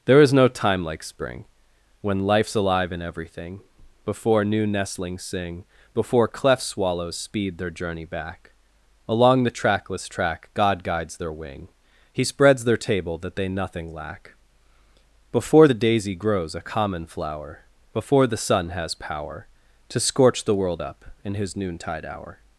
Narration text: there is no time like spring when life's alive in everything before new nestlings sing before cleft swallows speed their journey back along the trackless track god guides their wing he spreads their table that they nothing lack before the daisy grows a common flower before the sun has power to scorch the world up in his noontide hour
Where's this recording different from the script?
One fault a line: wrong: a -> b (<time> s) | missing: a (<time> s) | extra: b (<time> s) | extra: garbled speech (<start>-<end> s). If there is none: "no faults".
no faults